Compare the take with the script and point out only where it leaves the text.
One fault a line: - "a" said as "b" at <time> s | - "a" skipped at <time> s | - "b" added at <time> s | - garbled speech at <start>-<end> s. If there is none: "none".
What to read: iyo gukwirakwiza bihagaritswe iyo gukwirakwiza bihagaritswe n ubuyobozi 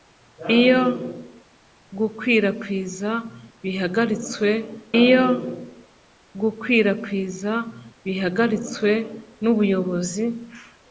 none